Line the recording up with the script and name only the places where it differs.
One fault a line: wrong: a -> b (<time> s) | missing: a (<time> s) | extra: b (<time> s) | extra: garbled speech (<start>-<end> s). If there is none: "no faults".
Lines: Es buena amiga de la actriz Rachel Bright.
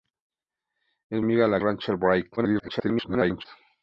missing: buena (1.2 s)
missing: actriz (1.6 s)
extra: garbled speech (2.4-3.4 s)